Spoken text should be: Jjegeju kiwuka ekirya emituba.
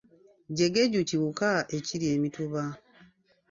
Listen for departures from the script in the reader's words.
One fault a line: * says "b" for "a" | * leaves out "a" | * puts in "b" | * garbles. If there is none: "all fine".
all fine